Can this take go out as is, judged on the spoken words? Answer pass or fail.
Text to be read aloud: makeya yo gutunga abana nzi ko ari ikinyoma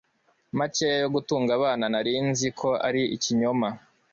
fail